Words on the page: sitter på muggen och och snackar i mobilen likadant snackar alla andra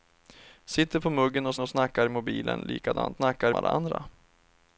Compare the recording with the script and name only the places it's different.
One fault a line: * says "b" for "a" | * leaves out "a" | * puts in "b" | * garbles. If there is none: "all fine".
all fine